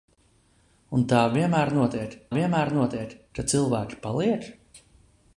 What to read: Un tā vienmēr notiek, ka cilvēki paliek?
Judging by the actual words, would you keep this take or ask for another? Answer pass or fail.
fail